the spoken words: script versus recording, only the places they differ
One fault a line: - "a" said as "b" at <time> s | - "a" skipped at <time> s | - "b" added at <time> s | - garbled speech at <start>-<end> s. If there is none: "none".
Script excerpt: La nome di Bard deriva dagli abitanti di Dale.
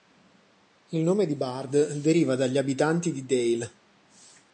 - "La" said as "Il" at 0.9 s